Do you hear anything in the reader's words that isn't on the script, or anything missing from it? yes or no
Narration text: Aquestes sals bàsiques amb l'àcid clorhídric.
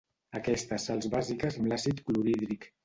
no